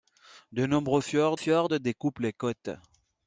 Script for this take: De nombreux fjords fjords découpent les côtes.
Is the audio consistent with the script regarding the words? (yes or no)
yes